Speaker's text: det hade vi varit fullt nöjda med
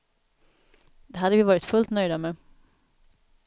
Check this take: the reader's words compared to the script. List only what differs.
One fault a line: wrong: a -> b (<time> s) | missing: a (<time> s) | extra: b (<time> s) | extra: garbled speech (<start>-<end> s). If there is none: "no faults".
no faults